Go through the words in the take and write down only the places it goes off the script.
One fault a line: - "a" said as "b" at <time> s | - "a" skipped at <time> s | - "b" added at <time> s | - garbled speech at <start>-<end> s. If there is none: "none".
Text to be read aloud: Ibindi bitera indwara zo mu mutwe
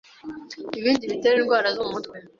none